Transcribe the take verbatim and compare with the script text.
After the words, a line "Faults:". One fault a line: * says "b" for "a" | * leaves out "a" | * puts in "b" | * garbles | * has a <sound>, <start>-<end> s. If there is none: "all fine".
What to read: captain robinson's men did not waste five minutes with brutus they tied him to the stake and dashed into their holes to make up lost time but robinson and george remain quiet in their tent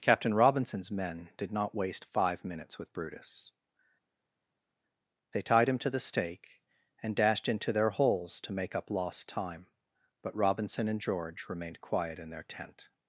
captain robinson's men did not waste five minutes with brutus they tied him to the stake and dashed into their holes to make up lost time but robinson and george remained quiet in their tent
Faults:
* says "remained" for "remain"